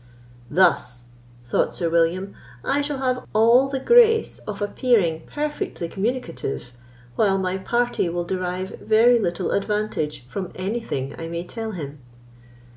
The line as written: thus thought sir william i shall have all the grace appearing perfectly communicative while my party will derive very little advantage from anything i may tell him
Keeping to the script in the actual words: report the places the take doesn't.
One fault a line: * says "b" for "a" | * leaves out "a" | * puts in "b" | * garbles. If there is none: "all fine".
* puts in "of"